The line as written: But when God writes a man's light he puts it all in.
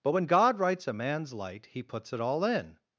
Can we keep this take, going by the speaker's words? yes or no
yes